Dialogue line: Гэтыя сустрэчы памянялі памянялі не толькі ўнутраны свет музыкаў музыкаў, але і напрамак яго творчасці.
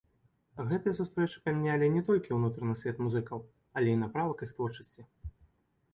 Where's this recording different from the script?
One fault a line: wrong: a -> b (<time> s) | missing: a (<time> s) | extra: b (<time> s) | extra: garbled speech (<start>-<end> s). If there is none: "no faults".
missing: памянялі (1.9 s)
missing: музыкаў (3.4 s)
wrong: яго -> іх (4.5 s)